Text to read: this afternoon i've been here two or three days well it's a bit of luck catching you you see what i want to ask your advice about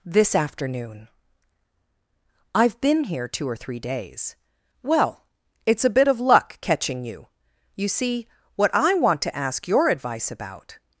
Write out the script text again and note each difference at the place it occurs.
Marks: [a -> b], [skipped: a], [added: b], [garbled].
this afternoon i've been here two or three days well it's a bit of luck catching you you see what i want to ask your advice about